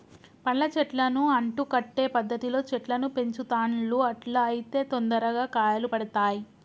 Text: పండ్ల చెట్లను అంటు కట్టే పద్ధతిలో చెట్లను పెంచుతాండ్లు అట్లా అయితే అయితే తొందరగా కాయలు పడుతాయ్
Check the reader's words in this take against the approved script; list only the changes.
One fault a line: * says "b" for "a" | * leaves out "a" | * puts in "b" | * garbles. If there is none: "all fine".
* leaves out "అయితే"